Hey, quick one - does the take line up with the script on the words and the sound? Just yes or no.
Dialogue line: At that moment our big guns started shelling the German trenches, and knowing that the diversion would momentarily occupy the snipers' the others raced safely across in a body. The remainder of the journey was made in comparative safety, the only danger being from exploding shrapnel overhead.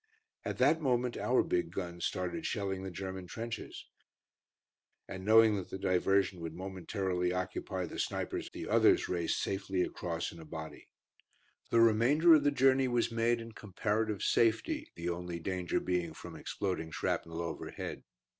yes